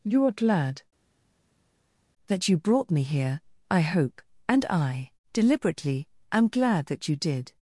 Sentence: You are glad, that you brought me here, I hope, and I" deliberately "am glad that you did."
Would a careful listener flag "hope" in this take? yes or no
no